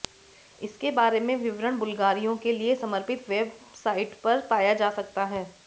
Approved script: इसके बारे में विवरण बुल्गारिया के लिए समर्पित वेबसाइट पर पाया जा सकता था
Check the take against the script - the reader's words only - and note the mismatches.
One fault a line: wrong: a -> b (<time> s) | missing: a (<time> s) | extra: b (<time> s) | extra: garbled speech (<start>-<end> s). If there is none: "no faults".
wrong: था -> है (5.2 s)